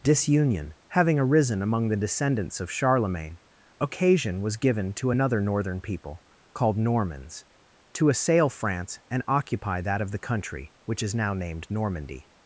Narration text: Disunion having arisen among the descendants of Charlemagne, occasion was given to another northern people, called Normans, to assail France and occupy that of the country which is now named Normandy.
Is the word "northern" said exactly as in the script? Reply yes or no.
yes